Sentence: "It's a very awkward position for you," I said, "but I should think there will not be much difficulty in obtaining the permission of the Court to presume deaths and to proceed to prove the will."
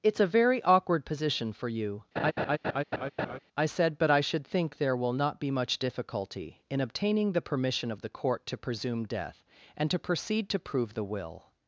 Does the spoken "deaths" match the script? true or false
false